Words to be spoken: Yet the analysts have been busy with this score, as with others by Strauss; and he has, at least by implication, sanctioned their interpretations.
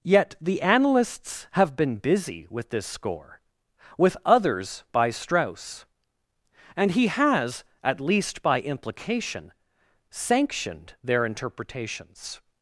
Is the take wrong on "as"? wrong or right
wrong